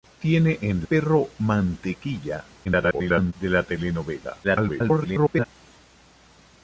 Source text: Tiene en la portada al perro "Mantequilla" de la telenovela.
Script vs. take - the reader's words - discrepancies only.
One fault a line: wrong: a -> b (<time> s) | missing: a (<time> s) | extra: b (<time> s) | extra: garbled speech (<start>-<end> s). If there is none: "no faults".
missing: la portada al (0.8 s)
extra: garbled speech (2.6-3.3 s)
extra: garbled speech (4.4-5.5 s)